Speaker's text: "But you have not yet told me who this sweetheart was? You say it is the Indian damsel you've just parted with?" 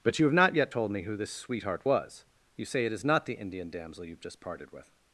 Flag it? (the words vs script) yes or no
yes